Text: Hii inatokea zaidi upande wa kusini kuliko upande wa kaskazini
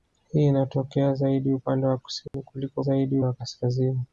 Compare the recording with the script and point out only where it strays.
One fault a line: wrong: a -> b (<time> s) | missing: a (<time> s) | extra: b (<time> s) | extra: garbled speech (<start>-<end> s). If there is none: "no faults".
wrong: upande -> zaidi (2.8 s)